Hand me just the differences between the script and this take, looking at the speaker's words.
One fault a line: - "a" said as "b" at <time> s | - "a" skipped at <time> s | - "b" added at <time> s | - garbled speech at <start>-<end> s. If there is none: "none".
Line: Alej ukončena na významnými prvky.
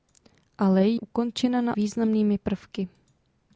none